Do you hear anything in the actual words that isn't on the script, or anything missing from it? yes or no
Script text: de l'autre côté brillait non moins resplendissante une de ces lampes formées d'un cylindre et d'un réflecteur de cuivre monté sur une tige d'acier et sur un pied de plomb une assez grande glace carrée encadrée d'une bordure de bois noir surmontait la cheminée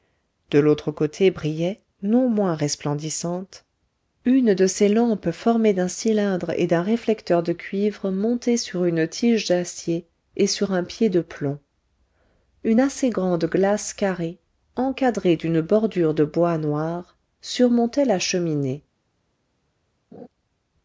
no